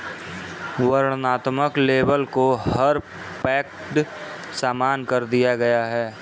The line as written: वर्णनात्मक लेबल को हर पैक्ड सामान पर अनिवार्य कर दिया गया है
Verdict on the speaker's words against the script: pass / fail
fail